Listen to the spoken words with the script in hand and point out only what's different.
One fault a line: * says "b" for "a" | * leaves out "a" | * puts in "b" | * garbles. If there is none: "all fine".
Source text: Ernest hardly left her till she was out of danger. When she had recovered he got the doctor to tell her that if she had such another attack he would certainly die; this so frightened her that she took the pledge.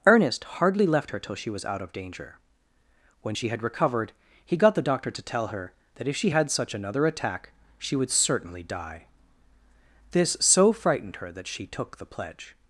* says "she" for "he"